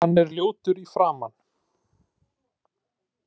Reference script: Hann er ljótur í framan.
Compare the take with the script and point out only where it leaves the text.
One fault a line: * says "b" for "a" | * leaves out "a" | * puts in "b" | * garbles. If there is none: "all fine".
all fine